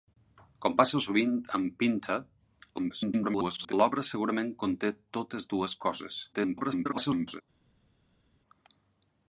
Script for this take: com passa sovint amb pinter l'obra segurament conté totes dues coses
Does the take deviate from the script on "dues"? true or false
false